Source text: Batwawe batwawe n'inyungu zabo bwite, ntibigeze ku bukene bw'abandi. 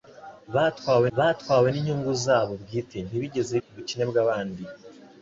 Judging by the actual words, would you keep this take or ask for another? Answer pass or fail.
pass